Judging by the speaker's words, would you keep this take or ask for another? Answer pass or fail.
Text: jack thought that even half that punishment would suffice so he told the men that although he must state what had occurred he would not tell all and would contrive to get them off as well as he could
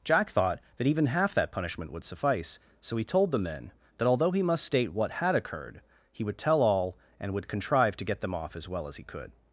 fail